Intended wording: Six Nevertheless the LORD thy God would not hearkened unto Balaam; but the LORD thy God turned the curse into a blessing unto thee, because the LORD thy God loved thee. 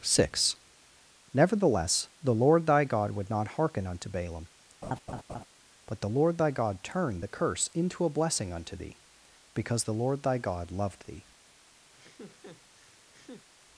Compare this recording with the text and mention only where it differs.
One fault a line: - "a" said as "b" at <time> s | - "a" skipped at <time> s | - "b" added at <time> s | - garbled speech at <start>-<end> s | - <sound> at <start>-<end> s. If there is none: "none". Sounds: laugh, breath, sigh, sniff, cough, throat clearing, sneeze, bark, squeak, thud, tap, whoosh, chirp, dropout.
- "hearkened" said as "hearken" at 3.5 s
- laugh at 4.8-5.4 s
- laugh at 11.9-13.5 s